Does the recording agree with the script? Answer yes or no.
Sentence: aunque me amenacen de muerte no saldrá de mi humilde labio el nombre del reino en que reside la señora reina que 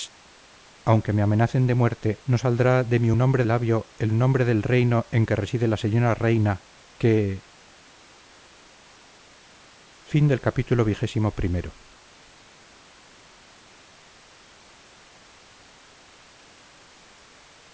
no